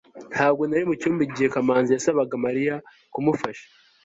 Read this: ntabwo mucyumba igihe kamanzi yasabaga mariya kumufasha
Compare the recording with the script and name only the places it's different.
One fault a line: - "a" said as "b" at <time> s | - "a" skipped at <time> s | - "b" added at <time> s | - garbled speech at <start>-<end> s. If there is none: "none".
- "nari" added at 0.7 s